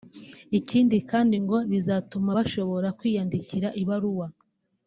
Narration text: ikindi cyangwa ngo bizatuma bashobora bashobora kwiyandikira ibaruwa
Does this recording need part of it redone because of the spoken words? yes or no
yes